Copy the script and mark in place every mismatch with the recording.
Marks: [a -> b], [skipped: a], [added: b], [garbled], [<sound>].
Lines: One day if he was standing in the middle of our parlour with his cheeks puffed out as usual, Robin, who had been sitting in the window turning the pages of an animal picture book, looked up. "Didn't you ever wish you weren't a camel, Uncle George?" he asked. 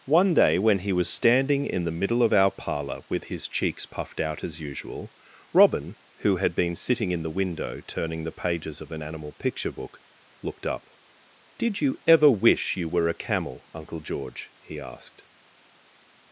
One day [if -> when] he was standing in the middle of our parlour with his cheeks puffed out as usual, Robin, who had been sitting in the window turning the pages of an animal picture book, looked up. ["Didn't -> Did] you ever wish you [weren't -> were] a camel, Uncle George?" he asked.